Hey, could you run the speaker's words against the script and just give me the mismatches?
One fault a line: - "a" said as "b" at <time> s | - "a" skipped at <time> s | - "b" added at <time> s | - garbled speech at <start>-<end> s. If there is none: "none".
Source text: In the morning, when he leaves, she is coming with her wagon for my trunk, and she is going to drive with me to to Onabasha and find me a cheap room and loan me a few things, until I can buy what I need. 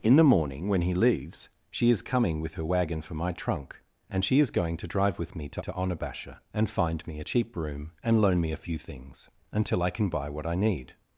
none